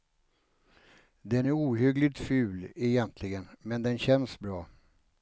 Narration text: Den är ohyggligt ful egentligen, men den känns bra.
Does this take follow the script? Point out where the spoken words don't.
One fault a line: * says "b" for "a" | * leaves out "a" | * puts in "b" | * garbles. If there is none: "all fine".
all fine